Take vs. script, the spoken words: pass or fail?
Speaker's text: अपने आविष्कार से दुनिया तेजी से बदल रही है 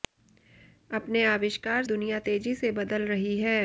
fail